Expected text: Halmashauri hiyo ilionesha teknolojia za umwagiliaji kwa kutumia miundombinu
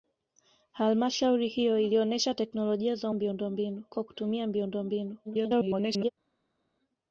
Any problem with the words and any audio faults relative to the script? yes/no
yes